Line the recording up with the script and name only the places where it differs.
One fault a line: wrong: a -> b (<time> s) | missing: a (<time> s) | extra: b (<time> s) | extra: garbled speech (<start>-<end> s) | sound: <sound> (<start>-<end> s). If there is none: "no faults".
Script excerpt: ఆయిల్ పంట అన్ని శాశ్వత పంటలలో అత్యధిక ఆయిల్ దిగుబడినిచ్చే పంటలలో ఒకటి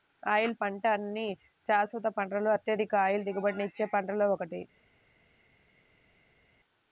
no faults